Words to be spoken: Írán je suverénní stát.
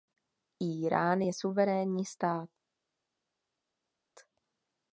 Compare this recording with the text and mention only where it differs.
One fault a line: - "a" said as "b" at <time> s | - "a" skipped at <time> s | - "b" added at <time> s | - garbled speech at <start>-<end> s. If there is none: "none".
none